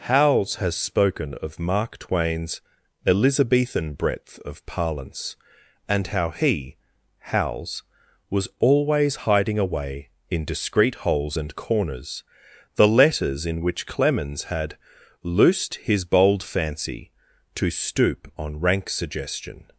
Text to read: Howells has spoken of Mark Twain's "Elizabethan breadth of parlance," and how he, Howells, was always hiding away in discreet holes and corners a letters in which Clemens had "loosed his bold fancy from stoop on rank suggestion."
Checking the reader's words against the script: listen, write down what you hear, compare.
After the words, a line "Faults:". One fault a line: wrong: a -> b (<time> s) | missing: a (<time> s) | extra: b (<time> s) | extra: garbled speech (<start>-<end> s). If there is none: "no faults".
Howells has spoken of Mark Twain's "Elizabethan breadth of parlance," and how he, Howells, was always hiding away in discreet holes and corners the letters in which Clemens had "loosed his bold fancy to stoop on rank suggestion."
Faults:
wrong: a -> the (12.8 s)
wrong: from -> to (17.6 s)